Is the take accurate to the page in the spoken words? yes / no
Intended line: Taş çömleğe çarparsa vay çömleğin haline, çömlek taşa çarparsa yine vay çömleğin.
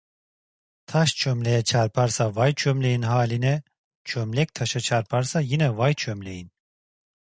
yes